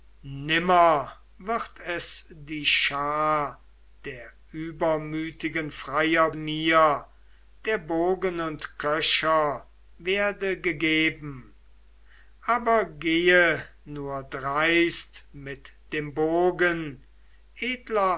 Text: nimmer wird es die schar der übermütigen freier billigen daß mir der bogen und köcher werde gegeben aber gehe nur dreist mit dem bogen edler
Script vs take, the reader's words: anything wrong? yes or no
yes